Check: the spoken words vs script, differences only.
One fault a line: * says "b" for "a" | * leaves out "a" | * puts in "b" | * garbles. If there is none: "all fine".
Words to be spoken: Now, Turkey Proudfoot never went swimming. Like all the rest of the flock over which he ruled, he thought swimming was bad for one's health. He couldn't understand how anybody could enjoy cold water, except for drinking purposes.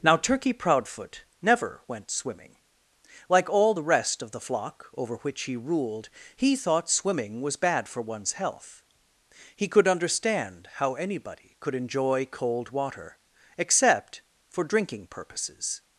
* says "could" for "couldn't"